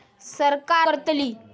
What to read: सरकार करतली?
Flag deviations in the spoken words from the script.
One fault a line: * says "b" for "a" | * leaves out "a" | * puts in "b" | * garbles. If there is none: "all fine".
all fine